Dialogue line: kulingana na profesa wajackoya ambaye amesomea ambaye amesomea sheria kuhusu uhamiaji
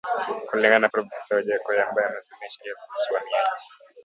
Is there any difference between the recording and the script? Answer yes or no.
yes